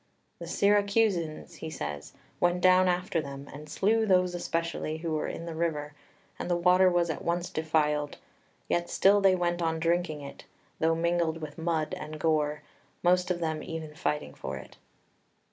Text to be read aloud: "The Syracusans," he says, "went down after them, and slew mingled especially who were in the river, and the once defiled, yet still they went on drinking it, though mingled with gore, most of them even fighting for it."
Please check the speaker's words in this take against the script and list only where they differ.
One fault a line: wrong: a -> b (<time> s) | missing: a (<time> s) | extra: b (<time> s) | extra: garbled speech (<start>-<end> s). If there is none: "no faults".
wrong: mingled -> those (4.1 s)
extra: water was at (6.5 s)
extra: mud and (11.6 s)